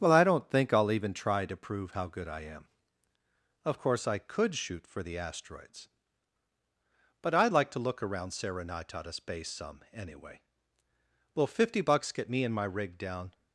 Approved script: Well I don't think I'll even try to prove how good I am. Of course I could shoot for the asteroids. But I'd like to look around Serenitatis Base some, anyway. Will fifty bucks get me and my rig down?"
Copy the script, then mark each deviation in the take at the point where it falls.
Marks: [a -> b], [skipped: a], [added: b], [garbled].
Well I don't think I'll even try to prove how good I am. Of course I could shoot for the asteroids. But I'd like to look around Serenitatis Base some, anyway. Will fifty bucks get me and my rig down?"